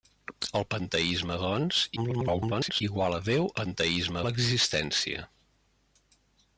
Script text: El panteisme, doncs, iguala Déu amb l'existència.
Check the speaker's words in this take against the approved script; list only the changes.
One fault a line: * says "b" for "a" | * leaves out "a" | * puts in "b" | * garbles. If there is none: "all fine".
* garbles
* says "panteisme" for "amb"